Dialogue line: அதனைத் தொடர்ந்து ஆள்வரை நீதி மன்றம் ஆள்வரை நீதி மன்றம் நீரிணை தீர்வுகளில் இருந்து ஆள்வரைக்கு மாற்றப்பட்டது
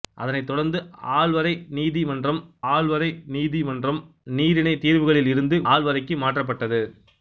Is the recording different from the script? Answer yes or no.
no